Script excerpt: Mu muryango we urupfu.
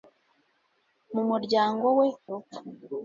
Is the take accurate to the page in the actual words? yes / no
yes